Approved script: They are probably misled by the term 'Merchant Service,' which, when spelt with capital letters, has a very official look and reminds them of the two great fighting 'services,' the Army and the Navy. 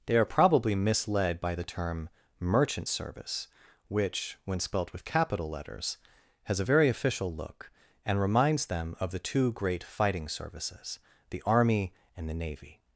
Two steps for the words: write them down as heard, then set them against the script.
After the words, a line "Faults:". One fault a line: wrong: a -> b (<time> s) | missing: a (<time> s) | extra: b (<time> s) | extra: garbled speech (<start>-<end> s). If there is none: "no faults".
They are probably misled by the term 'Merchant Service,' which, when spelt with capital letters, has a very official look and reminds them of the two great fighting 'services,' the Army and the Navy.
Faults:
no faults